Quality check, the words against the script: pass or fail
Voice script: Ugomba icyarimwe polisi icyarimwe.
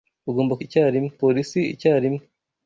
pass